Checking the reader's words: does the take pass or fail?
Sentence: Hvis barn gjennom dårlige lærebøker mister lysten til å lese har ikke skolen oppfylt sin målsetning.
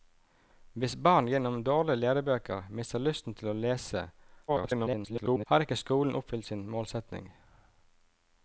fail